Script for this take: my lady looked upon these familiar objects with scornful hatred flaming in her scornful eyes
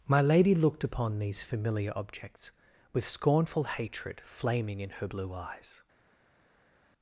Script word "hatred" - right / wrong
right